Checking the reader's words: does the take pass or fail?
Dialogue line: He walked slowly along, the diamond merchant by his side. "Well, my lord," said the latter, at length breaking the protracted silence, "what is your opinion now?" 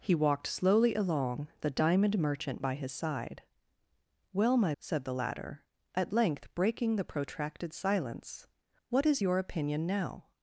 fail